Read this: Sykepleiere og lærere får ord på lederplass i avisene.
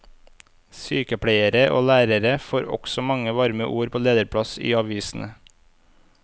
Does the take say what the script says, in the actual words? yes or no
no